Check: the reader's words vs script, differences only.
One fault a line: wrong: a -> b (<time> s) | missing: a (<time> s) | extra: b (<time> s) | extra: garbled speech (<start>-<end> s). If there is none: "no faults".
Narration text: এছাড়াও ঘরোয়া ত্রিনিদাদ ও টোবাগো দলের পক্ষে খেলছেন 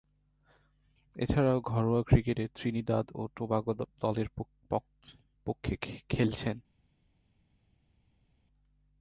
extra: ক্রিকেটে (2.0 s)